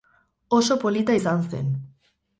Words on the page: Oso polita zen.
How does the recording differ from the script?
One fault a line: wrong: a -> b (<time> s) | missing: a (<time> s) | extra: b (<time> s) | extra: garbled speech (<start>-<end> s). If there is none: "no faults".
extra: izan (1.1 s)